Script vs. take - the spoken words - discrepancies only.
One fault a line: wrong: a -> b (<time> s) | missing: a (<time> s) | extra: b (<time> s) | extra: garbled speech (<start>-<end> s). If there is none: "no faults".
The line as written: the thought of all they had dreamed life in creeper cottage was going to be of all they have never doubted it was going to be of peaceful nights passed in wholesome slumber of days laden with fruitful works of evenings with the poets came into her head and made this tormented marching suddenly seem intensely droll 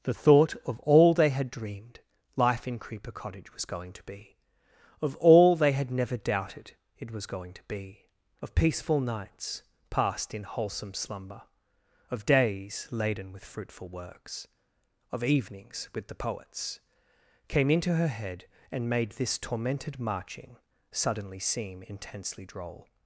wrong: have -> had (5.7 s)